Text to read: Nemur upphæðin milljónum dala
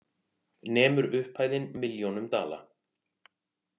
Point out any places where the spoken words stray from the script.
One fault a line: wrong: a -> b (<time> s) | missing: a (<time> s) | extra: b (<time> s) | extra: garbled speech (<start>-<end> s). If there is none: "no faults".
no faults